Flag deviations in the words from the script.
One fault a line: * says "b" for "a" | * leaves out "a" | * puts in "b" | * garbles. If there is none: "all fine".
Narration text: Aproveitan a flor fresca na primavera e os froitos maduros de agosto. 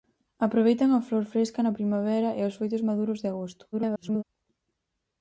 * garbles